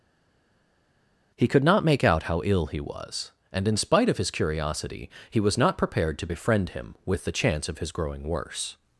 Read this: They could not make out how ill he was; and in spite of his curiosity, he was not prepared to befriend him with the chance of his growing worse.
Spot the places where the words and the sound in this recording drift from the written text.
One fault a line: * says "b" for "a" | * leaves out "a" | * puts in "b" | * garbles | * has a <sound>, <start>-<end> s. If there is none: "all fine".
* says "He" for "They"